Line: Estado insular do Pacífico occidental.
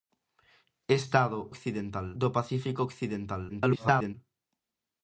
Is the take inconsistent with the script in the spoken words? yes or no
yes